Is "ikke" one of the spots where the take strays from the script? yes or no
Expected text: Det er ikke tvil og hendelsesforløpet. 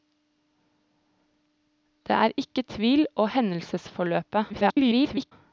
no